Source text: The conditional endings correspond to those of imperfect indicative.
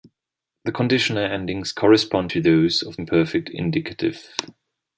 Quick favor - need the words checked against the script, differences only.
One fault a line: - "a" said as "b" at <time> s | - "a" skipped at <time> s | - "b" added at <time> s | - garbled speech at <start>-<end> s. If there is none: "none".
none